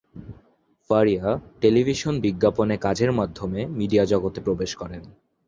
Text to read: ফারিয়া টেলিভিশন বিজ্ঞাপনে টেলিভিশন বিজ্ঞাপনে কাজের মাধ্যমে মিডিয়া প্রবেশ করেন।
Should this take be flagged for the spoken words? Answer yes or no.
yes